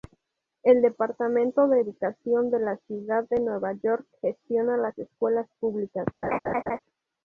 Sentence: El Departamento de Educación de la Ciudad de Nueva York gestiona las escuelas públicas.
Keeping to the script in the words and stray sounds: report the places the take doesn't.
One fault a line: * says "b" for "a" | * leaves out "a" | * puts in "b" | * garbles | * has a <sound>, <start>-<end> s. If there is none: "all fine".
* has a laugh, 6.2-6.8 s